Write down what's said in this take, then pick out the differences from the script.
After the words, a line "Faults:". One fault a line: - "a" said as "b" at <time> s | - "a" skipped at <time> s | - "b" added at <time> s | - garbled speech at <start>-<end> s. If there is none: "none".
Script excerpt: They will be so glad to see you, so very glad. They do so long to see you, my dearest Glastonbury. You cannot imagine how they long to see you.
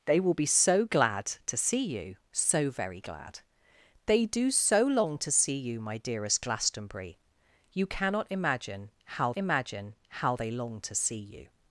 They will be so glad to see you, so very glad. They do so long to see you, my dearest Glastonbury. You cannot imagine how imagine how they long to see you.
Faults:
- "imagine how" added at 9.4 s